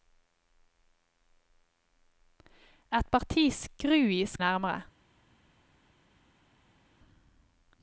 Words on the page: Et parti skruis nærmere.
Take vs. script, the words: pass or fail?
pass